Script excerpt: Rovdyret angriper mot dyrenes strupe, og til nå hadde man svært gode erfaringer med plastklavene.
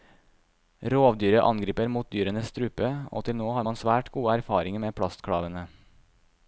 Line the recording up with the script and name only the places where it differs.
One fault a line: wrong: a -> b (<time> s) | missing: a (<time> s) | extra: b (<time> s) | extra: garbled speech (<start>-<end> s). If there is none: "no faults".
wrong: hadde -> har (3.6 s)